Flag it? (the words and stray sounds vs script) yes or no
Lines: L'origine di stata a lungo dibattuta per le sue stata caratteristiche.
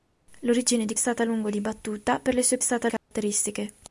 yes